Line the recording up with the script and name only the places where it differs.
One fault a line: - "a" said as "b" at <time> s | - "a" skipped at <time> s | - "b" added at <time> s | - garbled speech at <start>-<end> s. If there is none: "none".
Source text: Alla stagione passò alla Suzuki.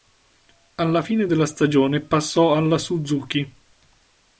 - "fine della" added at 1.0 s